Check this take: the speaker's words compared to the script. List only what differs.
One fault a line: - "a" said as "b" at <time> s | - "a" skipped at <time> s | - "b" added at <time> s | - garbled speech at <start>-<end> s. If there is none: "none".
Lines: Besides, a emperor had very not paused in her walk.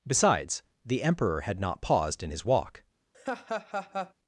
- "a" said as "the" at 0.8 s
- "very" skipped at 1.6 s
- "her" said as "his" at 2.3 s